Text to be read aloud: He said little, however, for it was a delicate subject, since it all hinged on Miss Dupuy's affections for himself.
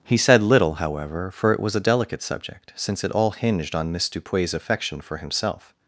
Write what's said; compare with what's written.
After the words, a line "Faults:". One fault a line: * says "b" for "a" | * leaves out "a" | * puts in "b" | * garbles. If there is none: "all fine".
He said little, however, for it was a delicate subject, since it all hinged on Miss Dupuy's affection for himself.
Faults:
* says "affection" for "affections"